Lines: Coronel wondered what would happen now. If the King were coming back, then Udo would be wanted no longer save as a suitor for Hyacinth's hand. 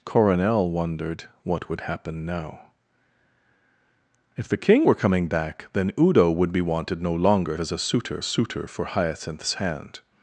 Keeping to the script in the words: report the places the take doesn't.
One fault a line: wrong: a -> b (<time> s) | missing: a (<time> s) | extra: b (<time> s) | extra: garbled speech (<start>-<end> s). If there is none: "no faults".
missing: save (7.6 s)
extra: suitor (8.2 s)